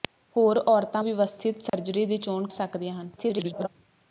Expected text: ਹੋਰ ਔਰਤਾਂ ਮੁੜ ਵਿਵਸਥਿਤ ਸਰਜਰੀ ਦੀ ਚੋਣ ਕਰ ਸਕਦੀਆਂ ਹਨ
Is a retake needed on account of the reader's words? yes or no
yes